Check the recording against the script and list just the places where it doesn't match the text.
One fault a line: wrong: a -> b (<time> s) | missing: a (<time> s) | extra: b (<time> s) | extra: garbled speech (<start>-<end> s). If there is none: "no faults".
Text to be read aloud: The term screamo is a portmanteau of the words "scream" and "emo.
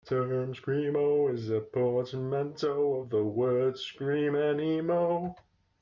no faults